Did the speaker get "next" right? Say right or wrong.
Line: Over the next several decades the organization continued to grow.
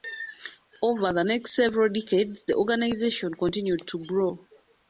right